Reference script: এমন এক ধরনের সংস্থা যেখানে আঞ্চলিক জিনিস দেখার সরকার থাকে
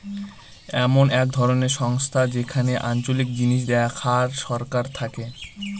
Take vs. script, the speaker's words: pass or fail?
pass